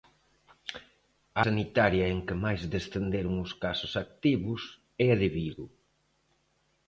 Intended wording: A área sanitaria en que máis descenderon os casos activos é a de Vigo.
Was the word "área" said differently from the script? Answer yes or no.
yes